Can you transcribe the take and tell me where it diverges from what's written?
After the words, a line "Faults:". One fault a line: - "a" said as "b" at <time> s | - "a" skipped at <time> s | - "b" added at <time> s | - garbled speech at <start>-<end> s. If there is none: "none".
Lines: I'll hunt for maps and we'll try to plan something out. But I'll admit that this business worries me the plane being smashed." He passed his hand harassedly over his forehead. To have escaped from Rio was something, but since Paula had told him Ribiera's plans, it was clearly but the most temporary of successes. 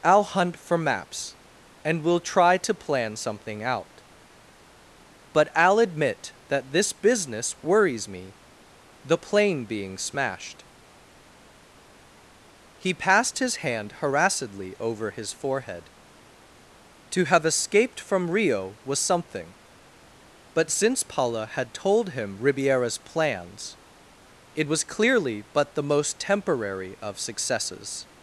I'll hunt for maps and we'll try to plan something out. But I'll admit that this business worries me the plane being smashed." He passed his hand harassedly over his forehead. To have escaped from Rio was something, but since Paula had told him Ribiera's plans, it was clearly but the most temporary of successes.
Faults:
none